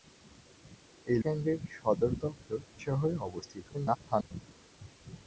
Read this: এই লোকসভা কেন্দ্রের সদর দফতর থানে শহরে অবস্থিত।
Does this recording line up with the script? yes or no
no